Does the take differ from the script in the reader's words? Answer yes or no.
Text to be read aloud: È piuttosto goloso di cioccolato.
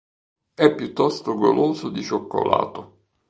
no